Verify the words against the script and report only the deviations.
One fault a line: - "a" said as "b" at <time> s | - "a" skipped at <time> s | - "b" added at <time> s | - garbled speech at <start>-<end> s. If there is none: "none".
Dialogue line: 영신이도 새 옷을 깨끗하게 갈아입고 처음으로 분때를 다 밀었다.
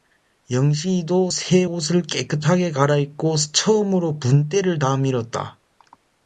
none